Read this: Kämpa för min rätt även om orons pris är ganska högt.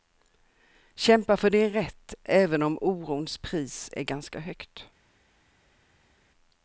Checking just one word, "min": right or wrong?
wrong